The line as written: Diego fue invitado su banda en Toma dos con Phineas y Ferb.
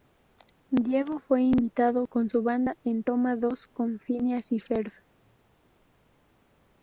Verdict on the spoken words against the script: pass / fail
fail